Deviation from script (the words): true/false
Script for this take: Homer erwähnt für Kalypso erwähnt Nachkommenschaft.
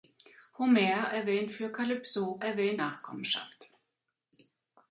false